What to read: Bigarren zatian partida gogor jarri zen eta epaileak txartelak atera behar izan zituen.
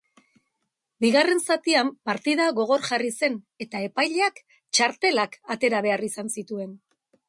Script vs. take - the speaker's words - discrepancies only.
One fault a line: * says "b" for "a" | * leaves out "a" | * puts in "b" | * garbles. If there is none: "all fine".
all fine